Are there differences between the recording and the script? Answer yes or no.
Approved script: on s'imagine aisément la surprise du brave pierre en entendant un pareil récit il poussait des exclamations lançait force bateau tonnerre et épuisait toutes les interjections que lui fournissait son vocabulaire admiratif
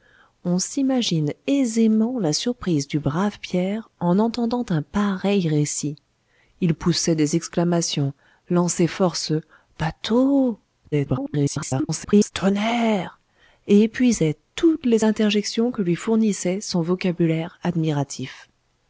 yes